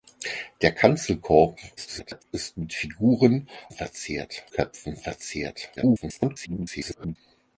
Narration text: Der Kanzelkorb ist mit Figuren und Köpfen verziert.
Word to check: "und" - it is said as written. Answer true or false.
false